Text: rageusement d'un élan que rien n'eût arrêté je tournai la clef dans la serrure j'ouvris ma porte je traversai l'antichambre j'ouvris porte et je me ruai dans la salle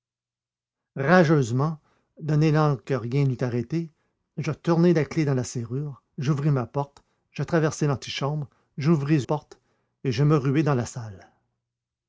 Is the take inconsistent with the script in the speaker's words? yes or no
no